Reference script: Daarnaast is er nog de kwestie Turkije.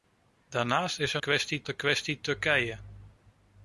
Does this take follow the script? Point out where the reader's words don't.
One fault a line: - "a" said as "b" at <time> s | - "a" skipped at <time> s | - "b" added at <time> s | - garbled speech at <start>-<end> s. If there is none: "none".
- "nog" said as "kwestie" at 1.2 s